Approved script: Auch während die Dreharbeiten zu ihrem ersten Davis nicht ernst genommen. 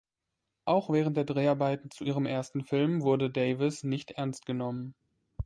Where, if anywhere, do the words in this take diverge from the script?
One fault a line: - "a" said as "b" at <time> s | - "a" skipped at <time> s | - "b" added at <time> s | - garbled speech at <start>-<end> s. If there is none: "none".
- "die" said as "der" at 1.1 s
- "Film wurde" added at 2.6 s